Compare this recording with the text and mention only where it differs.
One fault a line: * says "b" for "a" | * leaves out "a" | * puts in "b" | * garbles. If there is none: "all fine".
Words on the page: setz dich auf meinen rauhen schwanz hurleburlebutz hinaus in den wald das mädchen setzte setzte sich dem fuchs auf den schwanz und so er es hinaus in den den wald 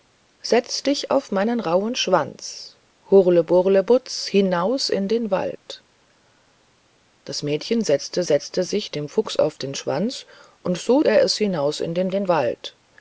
all fine